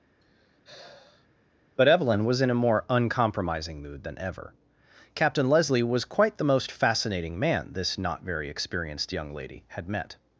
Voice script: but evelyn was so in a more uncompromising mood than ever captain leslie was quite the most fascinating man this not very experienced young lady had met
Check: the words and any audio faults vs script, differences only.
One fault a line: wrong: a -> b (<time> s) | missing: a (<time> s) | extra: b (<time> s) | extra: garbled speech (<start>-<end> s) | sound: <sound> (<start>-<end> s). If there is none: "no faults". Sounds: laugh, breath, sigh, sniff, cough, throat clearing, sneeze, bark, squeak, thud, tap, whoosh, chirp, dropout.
sound: sigh (0.2-1.3 s)
missing: so (2.4 s)